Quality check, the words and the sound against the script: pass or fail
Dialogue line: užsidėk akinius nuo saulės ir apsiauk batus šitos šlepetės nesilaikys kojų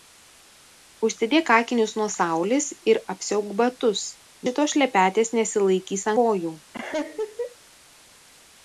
fail